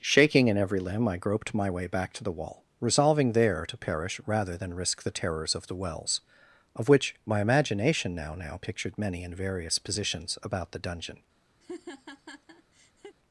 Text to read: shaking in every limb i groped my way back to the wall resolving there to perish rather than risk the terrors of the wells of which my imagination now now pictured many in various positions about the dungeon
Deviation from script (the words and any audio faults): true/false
true